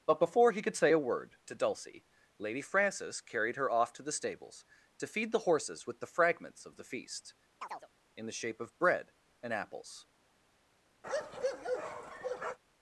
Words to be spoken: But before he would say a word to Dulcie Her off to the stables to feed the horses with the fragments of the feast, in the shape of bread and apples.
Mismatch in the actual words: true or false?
true